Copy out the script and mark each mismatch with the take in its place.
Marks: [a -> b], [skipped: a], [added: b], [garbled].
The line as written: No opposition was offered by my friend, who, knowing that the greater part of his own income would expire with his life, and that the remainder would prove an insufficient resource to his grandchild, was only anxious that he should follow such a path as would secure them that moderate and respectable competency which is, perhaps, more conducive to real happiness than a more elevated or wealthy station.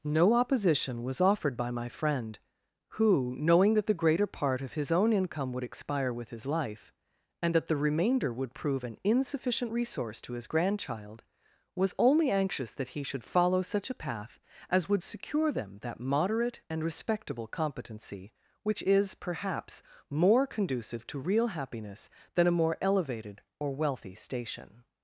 No opposition was offered by my friend, who, knowing that the greater part of his own income would expire with his life, and that the remainder would prove an insufficient resource to his grandchild, was only anxious that he should follow such a path as would secure them that moderate and respectable competency which is, perhaps, more conducive to real happiness than a more elevated or wealthy station.